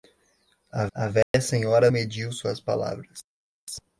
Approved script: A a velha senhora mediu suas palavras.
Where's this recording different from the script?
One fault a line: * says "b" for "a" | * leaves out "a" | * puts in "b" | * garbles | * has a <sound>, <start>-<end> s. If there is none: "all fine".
* has a dropout, 1.2-1.3 s